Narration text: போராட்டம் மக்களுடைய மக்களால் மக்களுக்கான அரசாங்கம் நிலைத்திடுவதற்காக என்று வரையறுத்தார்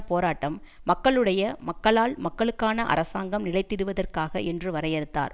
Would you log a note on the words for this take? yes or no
no